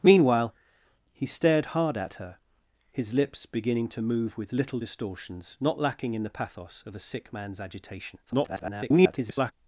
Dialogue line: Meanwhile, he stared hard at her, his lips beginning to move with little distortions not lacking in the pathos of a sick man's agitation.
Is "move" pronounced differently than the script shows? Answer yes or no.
no